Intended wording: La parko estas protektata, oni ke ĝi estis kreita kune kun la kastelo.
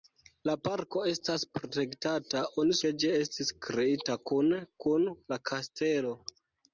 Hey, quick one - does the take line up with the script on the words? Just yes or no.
yes